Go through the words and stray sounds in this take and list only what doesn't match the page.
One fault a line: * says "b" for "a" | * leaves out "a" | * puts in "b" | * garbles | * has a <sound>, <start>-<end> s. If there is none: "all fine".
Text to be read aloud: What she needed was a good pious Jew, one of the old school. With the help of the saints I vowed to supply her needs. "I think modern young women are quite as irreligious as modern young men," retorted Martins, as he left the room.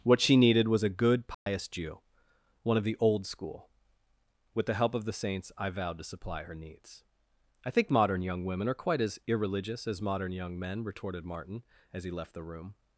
* has a dropout, 1.3-1.5 s
* says "Martin" for "Martins"